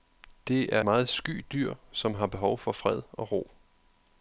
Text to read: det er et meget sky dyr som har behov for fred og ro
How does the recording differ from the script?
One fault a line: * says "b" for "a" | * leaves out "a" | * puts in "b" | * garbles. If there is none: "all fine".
* leaves out "et"